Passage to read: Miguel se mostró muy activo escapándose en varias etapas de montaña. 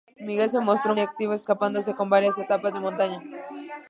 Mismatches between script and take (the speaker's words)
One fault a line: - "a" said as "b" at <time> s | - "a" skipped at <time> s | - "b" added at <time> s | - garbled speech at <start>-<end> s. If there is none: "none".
- "muy" skipped at 0.9 s